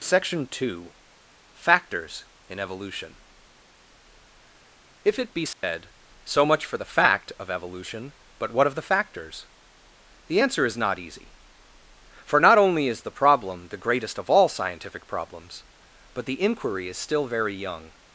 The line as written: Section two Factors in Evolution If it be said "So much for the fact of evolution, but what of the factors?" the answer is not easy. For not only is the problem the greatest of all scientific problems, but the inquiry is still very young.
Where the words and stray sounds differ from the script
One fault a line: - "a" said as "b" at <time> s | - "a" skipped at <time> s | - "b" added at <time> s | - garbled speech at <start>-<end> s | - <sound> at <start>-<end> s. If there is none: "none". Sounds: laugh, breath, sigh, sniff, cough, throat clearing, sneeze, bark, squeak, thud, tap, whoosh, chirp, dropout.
- dropout at 5.5-5.6 s